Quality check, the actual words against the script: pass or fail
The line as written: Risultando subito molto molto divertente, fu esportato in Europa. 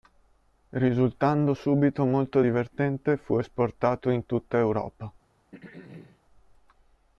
fail